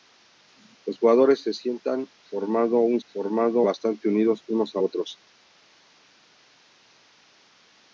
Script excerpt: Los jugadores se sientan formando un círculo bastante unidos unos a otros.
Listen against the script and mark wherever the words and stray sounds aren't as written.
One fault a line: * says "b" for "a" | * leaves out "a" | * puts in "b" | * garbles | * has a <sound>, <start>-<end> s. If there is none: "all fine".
* says "formando" for "círculo"